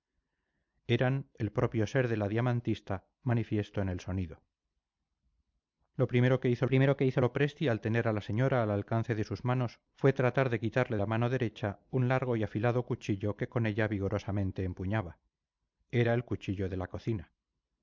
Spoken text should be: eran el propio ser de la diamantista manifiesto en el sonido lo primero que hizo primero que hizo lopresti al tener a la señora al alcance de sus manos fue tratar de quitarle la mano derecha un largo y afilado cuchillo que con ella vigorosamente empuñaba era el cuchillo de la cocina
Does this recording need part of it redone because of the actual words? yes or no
no